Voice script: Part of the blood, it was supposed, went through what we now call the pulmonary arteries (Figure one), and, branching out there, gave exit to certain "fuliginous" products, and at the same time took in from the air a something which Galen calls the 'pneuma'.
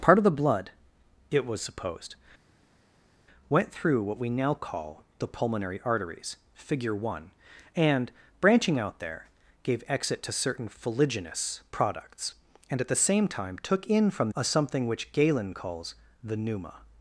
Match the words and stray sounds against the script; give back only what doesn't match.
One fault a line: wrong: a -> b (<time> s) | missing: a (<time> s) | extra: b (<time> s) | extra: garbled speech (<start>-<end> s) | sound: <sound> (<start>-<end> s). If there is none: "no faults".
missing: the air (14.3 s)